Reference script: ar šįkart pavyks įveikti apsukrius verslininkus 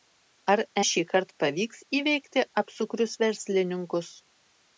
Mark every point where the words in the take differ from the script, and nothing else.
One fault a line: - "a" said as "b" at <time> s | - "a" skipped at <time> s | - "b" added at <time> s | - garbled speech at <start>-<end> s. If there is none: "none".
none